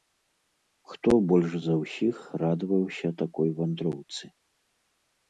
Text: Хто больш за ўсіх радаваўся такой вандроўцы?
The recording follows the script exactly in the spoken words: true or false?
true